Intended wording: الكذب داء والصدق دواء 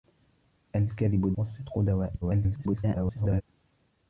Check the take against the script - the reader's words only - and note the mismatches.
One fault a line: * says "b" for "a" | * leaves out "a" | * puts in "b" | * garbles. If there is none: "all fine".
* leaves out "داء"
* garbles